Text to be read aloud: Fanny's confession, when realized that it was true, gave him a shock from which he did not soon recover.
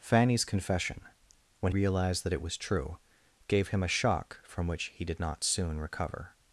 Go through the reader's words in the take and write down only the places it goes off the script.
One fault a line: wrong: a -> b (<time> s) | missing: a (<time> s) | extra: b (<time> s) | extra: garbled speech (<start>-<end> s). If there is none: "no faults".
no faults